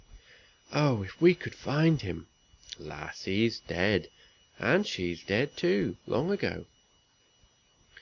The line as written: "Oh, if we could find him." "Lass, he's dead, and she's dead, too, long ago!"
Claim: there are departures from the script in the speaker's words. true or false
false